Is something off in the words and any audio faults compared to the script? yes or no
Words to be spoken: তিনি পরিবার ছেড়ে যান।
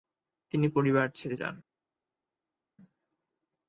no